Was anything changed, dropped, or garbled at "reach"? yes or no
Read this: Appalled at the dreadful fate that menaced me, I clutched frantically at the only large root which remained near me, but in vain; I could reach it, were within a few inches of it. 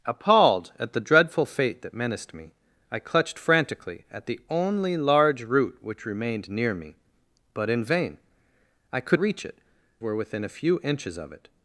no